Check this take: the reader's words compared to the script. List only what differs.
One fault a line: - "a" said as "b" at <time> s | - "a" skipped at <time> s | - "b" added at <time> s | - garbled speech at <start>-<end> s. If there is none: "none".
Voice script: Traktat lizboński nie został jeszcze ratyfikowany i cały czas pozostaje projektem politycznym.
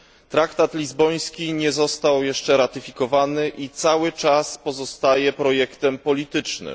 none